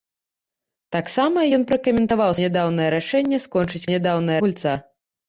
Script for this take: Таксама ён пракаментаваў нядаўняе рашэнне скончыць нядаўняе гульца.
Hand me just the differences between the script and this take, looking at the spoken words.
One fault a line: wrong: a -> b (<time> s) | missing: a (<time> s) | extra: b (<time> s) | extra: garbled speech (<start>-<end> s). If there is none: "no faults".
no faults